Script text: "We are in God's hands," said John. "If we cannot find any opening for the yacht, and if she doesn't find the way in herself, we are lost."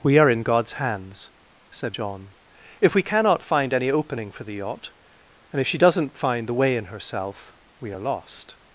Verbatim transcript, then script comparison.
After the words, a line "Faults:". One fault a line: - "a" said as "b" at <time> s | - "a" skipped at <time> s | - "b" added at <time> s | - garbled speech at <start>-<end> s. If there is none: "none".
"We are in God's hands," said John. "If we cannot find any opening for the yacht, and if she doesn't find the way in herself, we are lost."
Faults:
none